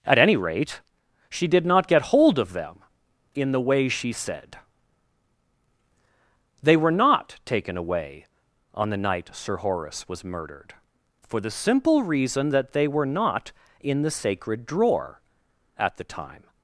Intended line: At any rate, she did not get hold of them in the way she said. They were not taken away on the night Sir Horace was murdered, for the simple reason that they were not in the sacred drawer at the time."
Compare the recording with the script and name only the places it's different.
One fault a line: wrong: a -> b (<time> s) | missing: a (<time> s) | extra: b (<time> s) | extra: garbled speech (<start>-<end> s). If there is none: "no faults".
no faults